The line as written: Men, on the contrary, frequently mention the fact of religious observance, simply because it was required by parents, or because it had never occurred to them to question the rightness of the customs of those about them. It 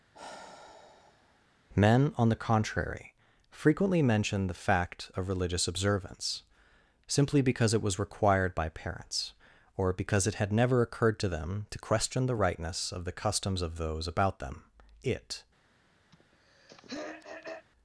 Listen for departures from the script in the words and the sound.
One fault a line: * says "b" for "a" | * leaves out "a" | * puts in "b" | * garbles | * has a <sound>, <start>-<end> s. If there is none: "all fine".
* has a sigh, 0.1-1.5 s
* has a throat clearing, 16.1-17.7 s